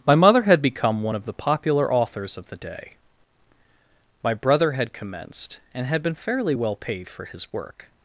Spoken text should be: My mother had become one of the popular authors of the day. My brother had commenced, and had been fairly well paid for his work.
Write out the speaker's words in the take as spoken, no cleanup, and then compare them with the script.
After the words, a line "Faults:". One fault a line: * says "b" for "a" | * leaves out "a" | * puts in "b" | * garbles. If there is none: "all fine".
My mother had become one of the popular authors of the day. My brother had commenced, and had been fairly well paid for his work.
Faults:
all fine